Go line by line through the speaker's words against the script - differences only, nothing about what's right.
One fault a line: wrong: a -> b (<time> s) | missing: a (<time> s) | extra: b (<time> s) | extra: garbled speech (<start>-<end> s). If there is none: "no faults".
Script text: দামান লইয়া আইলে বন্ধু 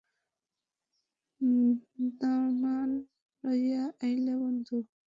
no faults